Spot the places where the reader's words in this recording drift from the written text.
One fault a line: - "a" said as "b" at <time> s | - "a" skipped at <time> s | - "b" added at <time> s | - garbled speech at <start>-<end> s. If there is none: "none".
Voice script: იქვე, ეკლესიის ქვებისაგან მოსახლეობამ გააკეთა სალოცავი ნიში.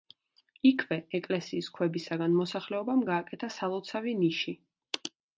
none